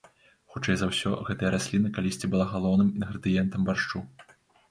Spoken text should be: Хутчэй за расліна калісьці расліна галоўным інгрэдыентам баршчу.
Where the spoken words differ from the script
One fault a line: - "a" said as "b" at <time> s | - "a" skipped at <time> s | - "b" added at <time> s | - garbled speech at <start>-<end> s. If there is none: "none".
- "ўсё гэтая" added at 0.9 s
- "расліна" said as "была" at 2.3 s